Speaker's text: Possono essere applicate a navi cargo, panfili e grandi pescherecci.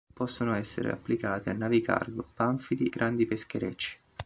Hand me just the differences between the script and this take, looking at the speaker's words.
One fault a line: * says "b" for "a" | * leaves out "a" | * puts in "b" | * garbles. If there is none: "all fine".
* leaves out "e"